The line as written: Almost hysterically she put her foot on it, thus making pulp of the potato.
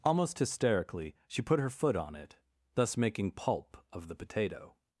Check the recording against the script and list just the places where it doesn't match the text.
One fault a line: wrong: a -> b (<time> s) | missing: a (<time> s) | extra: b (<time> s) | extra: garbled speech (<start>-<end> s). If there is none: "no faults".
no faults